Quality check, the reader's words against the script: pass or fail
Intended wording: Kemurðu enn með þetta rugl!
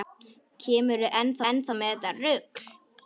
fail